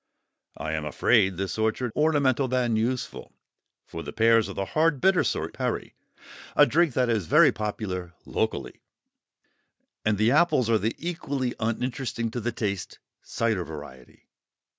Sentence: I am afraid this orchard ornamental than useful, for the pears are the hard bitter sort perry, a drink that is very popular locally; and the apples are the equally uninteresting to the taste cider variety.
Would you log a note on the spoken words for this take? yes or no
no